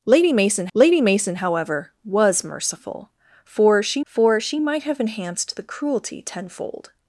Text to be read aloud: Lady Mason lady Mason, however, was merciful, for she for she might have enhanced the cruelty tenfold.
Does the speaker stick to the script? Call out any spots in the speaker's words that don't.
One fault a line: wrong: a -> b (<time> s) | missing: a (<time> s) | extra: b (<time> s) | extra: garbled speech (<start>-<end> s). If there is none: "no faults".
no faults